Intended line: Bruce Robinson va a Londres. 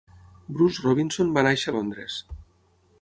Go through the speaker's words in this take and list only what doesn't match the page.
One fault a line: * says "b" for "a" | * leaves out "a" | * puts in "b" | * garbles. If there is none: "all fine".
* puts in "néixer"